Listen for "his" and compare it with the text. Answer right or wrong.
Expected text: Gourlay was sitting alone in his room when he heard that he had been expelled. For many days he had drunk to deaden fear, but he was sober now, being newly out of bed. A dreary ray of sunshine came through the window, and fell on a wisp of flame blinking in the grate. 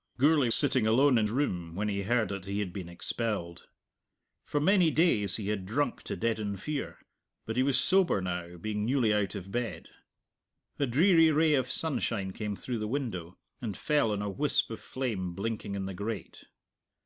wrong